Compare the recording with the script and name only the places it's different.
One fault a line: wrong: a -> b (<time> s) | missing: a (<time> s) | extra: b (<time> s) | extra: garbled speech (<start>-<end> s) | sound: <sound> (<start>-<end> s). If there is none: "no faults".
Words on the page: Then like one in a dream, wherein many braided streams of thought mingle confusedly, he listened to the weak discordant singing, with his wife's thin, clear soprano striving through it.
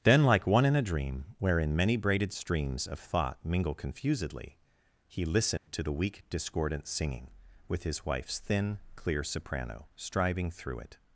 sound: dropout (5.6-5.7 s)